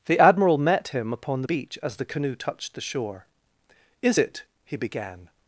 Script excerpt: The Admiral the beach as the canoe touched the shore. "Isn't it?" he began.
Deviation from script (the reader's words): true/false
true